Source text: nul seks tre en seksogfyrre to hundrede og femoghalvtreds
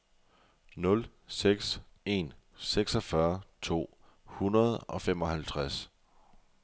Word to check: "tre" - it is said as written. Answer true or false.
false